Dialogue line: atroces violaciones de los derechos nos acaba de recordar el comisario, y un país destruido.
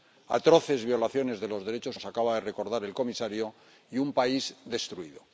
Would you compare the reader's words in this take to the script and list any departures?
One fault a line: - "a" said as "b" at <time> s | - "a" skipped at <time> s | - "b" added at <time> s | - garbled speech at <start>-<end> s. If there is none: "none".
none